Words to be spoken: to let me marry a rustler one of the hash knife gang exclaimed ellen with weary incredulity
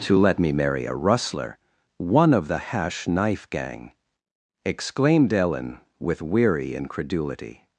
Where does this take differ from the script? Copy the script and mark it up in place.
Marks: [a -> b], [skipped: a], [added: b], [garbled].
to let me marry a rustler one of the hash knife gang exclaimed ellen with weary incredulity